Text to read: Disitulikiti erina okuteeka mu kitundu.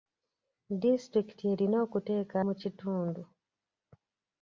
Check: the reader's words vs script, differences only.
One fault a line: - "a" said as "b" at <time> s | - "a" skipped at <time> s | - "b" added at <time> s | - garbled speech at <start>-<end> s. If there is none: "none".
none